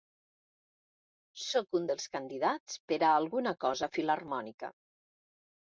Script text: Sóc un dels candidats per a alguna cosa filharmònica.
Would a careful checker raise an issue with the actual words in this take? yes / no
no